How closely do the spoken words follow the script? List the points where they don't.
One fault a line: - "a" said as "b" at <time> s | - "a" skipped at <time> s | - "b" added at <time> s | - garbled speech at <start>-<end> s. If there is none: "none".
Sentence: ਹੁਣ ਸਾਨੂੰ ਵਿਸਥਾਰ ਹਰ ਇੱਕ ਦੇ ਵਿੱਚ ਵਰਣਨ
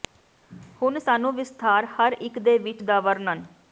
- "ਦਾ" added at 2.8 s